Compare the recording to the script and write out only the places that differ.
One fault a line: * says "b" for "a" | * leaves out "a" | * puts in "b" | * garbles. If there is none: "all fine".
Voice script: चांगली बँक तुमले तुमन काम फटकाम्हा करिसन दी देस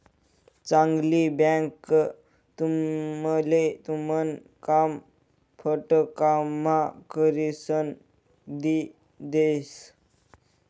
all fine